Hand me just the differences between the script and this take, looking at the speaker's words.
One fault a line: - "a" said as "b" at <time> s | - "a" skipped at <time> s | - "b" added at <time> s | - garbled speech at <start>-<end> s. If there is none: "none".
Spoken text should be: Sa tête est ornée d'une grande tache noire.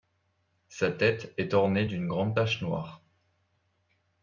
none